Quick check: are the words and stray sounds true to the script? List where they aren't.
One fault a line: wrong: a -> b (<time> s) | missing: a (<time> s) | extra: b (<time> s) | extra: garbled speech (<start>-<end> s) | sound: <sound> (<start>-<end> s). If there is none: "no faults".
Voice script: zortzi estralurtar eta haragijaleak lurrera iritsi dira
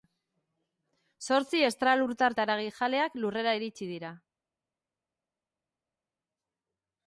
no faults